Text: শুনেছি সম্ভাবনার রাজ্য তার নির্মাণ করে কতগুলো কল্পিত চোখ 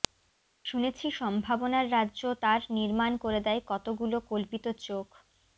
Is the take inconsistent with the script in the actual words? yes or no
yes